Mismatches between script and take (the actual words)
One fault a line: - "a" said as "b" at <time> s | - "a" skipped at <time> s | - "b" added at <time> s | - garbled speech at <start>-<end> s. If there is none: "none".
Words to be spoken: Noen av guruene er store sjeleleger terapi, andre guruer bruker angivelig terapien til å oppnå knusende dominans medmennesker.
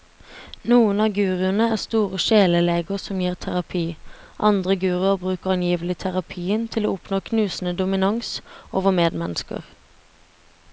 - "som gir" added at 3.1 s
- "over" added at 8.7 s